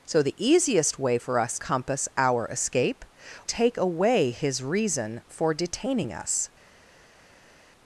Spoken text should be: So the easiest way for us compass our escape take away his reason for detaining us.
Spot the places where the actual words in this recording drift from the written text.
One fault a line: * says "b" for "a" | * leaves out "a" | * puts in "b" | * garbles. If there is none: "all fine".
all fine